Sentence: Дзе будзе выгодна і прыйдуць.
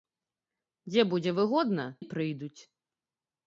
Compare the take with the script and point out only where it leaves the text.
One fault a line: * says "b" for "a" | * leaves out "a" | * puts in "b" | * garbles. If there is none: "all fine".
all fine